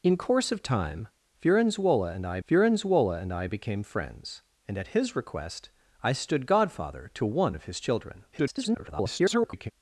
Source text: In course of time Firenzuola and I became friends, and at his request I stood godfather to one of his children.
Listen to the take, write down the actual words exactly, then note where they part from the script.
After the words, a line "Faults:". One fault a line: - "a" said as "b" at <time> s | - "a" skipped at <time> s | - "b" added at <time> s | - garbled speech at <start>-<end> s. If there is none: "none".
In course of time Firenzuola and I Firenzuola and I became friends, and at his request I stood godfather to one of his children. [garbled]
Faults:
- "Firenzuola and I" added at 2.4 s
- garbled speech at 8.3-9.7 s